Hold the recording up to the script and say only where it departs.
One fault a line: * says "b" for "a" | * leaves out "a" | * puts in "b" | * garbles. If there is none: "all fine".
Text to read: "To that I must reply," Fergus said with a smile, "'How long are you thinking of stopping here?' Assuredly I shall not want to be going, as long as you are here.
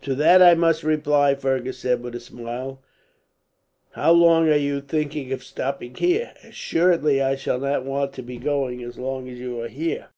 all fine